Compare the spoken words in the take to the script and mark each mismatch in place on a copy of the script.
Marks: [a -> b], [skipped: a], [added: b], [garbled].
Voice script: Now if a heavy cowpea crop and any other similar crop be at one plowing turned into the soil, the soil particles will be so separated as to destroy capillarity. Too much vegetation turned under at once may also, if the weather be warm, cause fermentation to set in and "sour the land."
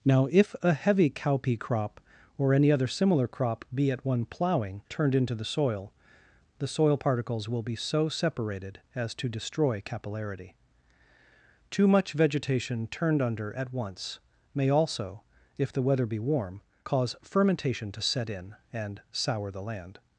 Now if a heavy cowpea crop [and -> or] any other similar crop be at one plowing turned into the soil, the soil particles will be so separated as to destroy capillarity. Too much vegetation turned under at once may also, if the weather be warm, cause fermentation to set in and "sour the land."